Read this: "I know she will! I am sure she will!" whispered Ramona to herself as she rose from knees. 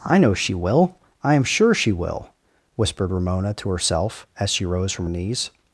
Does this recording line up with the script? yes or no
yes